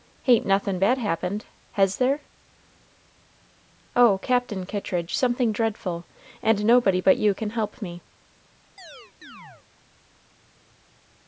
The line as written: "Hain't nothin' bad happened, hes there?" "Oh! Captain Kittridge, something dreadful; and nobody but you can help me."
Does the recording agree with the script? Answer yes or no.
yes